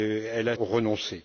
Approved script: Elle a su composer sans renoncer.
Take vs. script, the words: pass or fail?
fail